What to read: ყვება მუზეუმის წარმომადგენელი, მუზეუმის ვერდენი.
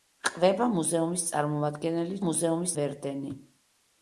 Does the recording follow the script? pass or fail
pass